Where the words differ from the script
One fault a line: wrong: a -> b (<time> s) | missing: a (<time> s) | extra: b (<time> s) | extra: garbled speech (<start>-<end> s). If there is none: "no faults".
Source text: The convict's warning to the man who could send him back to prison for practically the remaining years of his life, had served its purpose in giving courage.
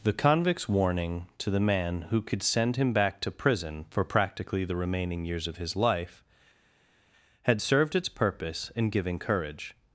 no faults